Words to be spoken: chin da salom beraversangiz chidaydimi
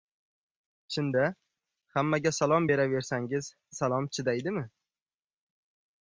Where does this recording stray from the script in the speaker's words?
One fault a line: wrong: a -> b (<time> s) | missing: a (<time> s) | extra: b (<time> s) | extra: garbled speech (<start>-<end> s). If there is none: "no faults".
extra: hammaga (1.9 s)
extra: salom (3.8 s)